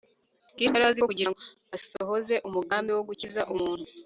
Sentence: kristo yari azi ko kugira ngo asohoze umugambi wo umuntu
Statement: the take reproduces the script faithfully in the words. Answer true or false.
false